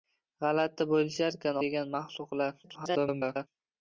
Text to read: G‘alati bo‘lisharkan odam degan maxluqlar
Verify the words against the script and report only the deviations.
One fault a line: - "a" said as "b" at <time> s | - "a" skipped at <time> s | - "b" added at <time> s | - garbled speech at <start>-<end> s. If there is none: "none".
- "odam" skipped at 1.6 s
- garbled speech at 2.6-3.5 s